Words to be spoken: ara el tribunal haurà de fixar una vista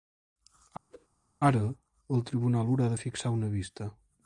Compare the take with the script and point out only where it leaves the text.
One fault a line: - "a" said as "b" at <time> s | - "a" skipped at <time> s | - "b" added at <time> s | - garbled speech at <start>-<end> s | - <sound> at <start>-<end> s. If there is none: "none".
- whoosh at 0.9-1.1 s